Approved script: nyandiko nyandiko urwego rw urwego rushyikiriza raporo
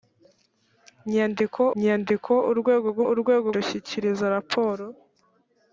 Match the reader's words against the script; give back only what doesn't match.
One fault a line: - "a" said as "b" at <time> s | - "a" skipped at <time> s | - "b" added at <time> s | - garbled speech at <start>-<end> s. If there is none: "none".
none